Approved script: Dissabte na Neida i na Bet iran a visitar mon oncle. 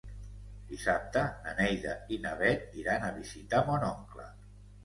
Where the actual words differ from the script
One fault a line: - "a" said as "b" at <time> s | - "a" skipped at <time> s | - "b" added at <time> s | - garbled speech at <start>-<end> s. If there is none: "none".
none